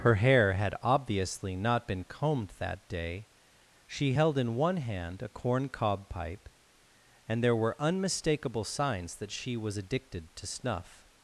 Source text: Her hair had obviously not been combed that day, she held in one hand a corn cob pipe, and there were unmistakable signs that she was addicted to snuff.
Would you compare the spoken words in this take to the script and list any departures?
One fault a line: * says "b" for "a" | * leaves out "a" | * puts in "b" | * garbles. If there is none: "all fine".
all fine